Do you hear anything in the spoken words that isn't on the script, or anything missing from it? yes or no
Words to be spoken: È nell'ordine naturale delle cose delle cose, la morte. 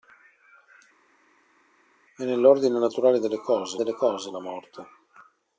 no